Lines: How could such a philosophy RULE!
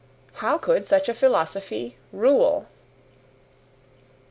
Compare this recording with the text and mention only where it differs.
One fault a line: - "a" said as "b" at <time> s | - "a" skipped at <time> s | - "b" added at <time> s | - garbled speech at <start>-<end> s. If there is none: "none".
none